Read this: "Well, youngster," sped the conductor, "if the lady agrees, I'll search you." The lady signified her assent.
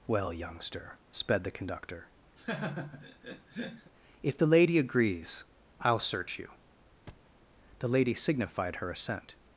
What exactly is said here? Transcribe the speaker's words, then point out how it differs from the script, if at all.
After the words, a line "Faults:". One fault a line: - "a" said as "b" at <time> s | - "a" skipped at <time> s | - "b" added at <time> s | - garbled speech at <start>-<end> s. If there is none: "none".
"Well, youngster," sped the conductor, "if the lady agrees, I'll search you." The lady signified her assent.
Faults:
none